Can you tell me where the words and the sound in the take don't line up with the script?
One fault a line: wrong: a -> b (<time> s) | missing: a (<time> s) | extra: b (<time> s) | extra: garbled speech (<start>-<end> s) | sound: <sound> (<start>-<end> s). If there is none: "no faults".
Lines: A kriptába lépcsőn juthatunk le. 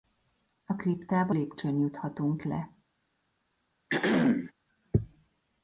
sound: throat clearing (3.9-4.5 s)